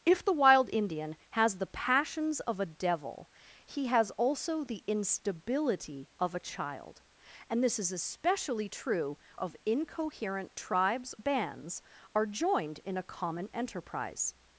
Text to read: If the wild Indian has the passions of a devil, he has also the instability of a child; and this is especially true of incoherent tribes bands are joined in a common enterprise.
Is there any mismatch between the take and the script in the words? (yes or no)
no